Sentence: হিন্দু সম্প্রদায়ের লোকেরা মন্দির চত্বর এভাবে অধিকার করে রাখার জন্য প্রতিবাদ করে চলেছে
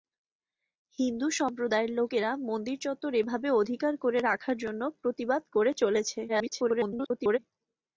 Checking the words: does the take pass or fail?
fail